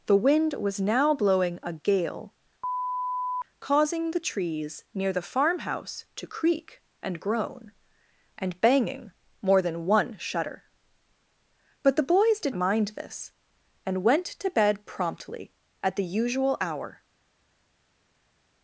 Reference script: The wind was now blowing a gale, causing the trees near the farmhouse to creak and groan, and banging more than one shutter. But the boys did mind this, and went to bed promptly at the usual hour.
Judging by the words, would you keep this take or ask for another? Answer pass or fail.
pass